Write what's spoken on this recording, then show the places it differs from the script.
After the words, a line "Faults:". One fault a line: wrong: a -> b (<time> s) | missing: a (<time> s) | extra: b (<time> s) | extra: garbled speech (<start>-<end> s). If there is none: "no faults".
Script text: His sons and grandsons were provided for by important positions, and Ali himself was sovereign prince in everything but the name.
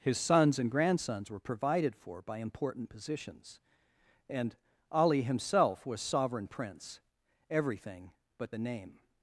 His sons and grandsons were provided for by important positions, and Ali himself was sovereign prince everything but the name.
Faults:
missing: in (7.0 s)